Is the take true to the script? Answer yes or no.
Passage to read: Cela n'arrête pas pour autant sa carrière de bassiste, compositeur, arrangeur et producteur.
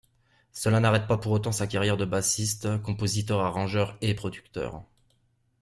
yes